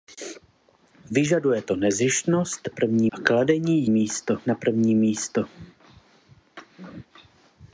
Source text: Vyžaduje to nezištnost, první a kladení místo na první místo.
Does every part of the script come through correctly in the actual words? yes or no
yes